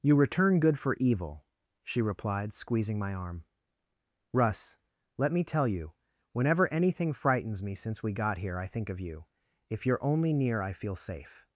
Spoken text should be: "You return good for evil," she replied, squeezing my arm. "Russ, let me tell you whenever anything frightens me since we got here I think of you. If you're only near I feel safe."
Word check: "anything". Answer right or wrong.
right